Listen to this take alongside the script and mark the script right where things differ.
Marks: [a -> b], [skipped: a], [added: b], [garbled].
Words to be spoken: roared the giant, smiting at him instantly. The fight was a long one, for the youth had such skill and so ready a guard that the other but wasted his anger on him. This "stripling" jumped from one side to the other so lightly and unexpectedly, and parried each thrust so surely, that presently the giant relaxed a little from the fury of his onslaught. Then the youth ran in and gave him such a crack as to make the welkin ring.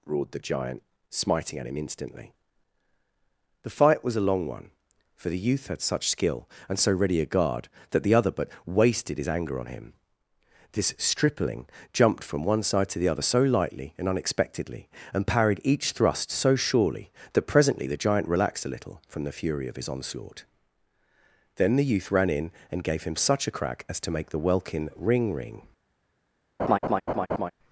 roared the giant, smiting at him instantly. The fight was a long one, for the youth had such skill and so ready a guard that the other but wasted his anger on him. This "stripling" jumped from one side to the other so lightly and unexpectedly, and parried each thrust so surely, that presently the giant relaxed a little from the fury of his onslaught. Then the youth ran in and gave him such a crack as to make the welkin ring. [added: ring]